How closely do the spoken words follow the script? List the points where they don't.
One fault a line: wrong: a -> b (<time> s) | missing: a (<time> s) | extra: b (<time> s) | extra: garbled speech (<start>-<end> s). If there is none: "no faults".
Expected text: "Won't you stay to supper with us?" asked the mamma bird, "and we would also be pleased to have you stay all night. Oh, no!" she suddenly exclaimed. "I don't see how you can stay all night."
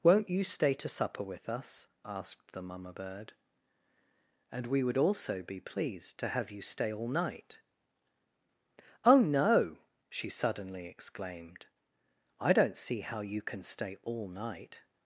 no faults